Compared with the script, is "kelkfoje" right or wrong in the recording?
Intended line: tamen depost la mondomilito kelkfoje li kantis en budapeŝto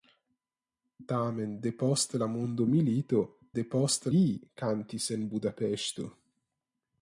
wrong